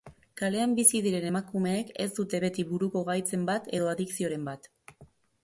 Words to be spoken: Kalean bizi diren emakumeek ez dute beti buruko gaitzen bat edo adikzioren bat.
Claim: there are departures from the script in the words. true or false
false